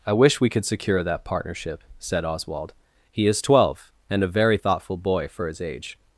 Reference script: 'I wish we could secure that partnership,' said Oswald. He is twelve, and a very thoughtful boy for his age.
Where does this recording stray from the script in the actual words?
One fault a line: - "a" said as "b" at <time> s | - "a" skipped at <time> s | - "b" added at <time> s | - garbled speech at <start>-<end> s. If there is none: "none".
none